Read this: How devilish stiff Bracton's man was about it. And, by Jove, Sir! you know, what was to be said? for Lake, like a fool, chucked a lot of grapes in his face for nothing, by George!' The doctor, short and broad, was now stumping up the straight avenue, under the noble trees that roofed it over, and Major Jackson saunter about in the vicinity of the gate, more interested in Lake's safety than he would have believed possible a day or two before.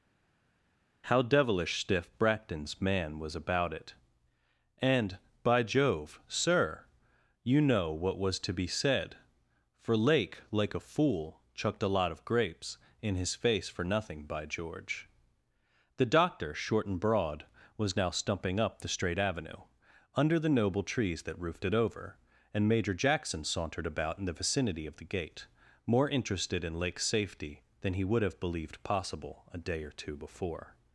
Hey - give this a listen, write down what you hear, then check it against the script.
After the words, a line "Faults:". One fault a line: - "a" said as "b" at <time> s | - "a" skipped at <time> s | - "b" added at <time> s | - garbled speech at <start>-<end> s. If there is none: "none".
How devilish stiff Bracton's man was about it. And, by Jove, Sir! you know, what was to be said? for Lake, like a fool, chucked a lot of grapes in his face for nothing, by George!' The doctor, short and broad, was now stumping up the straight avenue, under the noble trees that roofed it over, and Major Jackson sauntered about in the vicinity of the gate, more interested in Lake's safety than he would have believed possible a day or two before.
Faults:
- "saunter" said as "sauntered" at 23.4 s